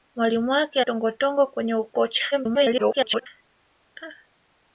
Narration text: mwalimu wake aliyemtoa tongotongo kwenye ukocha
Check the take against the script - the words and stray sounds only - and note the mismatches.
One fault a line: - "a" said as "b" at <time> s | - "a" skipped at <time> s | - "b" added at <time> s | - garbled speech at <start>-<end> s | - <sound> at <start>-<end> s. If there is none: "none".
- "aliyemtoa" skipped at 0.8 s
- garbled speech at 2.3-3.3 s